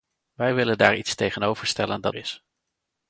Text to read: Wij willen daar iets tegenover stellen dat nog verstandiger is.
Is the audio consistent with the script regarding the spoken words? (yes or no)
no